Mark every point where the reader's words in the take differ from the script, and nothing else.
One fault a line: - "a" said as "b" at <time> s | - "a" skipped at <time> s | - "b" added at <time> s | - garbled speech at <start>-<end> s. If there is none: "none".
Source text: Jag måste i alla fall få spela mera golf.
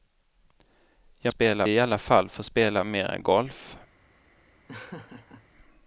- "måste" said as "spela" at 1.3 s